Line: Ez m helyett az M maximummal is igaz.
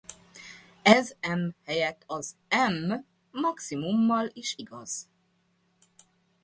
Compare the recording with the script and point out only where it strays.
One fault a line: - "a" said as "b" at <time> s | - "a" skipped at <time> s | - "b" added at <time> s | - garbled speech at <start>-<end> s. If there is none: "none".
none